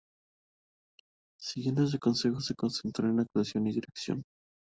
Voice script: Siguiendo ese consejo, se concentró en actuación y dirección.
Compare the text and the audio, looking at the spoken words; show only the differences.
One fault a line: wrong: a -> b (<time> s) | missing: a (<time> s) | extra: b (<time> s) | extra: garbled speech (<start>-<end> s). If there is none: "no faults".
no faults